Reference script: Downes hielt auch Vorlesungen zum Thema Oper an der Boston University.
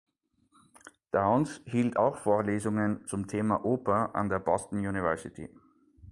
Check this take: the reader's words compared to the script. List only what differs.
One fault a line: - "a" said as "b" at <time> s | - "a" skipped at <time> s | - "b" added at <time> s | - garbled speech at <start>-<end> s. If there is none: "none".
none